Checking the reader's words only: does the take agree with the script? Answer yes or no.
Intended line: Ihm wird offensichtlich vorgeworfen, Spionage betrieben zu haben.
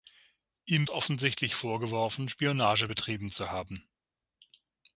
no